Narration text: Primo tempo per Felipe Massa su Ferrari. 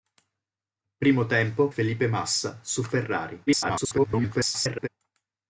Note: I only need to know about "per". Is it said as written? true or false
false